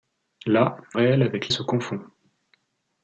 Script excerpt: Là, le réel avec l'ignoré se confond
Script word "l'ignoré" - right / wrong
wrong